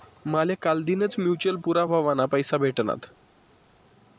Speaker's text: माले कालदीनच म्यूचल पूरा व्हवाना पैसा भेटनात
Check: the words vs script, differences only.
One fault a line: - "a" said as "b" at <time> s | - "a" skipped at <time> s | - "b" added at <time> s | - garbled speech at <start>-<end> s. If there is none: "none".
none